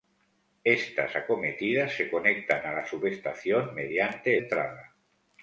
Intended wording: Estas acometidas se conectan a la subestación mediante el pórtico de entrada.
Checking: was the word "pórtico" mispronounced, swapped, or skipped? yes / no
yes